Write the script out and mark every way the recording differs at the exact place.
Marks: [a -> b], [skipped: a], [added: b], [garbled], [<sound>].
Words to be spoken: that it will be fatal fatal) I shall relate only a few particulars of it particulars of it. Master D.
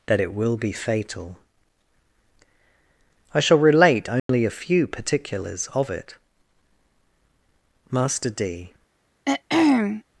that it will be fatal [skipped: fatal)] I shall relate only [dropout] a few particulars of it [skipped: particulars of it.] Master D. [throat clearing]